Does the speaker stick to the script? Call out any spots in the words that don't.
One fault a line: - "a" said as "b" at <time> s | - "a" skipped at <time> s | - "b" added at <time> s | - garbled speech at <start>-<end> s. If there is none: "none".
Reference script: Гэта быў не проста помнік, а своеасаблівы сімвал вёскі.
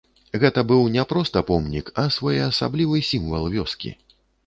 none